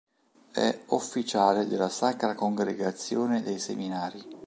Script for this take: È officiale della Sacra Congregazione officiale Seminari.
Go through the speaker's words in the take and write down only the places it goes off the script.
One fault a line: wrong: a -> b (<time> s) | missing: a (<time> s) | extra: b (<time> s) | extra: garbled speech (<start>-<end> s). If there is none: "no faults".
wrong: officiale -> dei (3.4 s)